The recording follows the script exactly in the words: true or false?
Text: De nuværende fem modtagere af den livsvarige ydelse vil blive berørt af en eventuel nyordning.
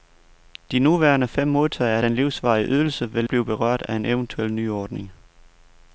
true